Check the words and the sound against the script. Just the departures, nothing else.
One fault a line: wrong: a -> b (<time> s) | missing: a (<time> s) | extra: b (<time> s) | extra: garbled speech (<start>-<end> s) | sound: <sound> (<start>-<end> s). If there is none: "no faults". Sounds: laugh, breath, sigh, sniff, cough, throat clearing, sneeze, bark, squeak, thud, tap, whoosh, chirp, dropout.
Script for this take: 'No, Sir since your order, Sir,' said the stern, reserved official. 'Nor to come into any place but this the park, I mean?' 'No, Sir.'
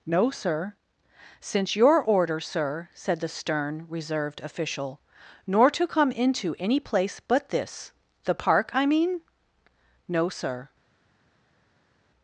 no faults